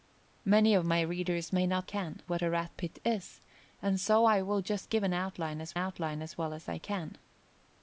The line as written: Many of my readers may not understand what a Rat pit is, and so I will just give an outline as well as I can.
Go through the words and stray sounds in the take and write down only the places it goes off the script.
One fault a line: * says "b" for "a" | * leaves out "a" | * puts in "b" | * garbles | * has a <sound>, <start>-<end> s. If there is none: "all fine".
* says "can" for "understand"
* puts in "outline as"